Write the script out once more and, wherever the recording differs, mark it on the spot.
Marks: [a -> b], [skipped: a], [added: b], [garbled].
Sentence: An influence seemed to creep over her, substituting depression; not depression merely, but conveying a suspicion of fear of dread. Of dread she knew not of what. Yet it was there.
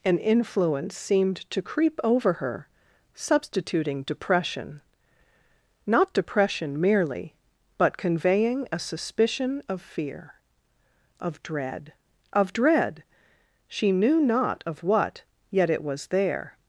An influence seemed to creep over her, substituting depression; not depression merely, but conveying a suspicion of fear of dread. Of dread she knew not of what. Yet it was there.